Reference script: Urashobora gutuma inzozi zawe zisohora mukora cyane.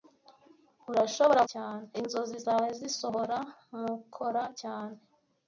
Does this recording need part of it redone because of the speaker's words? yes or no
yes